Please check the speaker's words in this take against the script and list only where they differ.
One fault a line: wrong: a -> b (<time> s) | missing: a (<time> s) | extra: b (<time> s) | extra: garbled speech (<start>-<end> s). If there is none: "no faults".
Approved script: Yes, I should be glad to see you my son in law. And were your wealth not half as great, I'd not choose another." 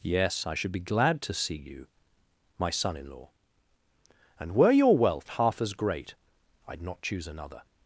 missing: not (5.3 s)